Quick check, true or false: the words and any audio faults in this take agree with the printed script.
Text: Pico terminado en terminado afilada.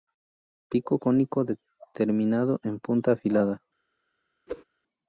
false